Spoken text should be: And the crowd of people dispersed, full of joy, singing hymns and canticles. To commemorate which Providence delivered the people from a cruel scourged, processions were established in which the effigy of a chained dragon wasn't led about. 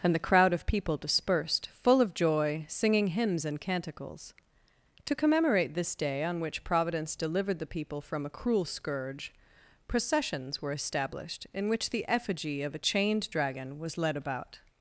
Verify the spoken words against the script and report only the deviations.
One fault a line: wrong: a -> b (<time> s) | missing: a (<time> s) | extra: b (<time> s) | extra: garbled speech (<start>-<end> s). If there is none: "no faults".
extra: this day on (5.8 s)
wrong: scourged -> scourge (8.6 s)
wrong: wasn't -> was (13.8 s)